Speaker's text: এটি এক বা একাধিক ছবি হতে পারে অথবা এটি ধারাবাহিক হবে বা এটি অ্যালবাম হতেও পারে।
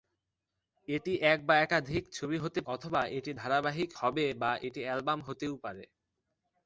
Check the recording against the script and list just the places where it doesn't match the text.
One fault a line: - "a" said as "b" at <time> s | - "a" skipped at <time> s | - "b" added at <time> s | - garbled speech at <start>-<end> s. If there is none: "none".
- "পারে" skipped at 2.6 s